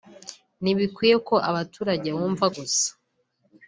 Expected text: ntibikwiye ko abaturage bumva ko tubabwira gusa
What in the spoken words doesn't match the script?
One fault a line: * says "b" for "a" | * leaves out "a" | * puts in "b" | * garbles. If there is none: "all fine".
* leaves out "ko tubabwira"